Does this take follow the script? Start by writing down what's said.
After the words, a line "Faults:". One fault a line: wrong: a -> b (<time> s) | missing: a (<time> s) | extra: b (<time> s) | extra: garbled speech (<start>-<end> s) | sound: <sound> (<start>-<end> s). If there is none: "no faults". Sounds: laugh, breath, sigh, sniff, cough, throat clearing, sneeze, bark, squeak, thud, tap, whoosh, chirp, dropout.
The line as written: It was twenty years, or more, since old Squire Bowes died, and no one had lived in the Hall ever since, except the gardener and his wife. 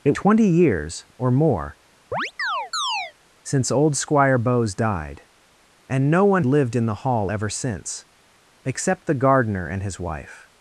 It twenty years, or more, since old Squire Bowes died, and no one lived in the Hall ever since, except the gardener and his wife.
Faults:
missing: was (0.1 s)
sound: chirp (2.1-3.1 s)
missing: had (6.4 s)